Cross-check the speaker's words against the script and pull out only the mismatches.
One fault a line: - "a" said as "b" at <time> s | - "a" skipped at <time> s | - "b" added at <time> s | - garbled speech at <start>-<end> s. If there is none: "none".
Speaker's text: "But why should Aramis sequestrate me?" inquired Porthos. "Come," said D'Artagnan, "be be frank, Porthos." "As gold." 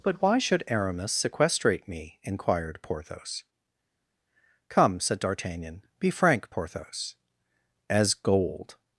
- "be" skipped at 6.1 s